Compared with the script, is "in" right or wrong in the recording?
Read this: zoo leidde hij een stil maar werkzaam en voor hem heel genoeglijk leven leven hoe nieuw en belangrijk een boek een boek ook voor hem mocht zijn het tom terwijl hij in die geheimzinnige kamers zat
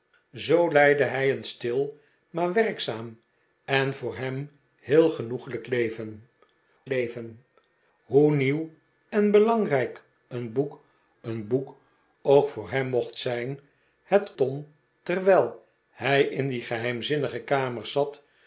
right